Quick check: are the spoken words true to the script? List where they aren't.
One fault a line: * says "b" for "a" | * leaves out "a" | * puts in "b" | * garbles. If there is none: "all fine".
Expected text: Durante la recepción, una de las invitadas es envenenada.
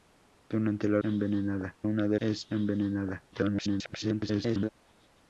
* says "envenenada" for "recepción"
* leaves out "las invitadas"
* garbles